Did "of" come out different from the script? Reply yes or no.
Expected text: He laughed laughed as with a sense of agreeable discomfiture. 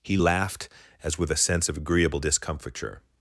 no